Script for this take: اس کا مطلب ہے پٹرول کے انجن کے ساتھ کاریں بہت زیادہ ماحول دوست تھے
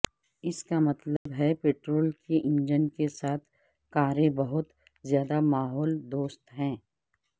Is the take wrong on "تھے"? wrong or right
wrong